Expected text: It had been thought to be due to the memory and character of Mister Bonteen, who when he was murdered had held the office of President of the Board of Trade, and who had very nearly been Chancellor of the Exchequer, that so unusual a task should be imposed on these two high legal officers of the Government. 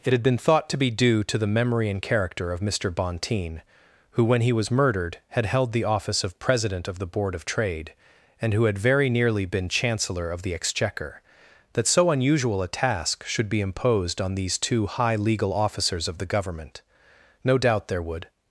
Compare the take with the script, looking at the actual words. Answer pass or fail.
fail